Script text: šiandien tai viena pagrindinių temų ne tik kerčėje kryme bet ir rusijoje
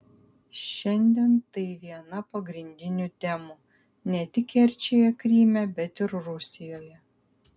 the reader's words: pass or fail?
pass